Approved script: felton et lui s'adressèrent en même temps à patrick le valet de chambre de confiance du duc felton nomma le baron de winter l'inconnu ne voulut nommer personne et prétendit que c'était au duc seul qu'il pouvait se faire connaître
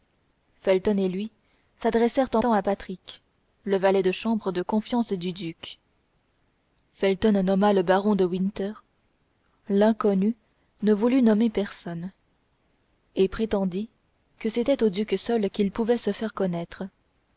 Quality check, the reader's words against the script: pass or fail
fail